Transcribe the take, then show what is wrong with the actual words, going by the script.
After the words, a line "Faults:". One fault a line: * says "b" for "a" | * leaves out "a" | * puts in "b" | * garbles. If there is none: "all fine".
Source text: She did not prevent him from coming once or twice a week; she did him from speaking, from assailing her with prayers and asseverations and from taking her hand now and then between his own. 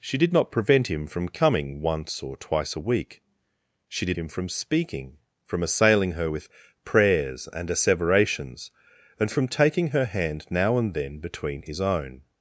She did not prevent him from coming once or twice a week; she did him from speaking, from assailing her with prayers and asseverations and from taking her hand now and then between his own.
Faults:
all fine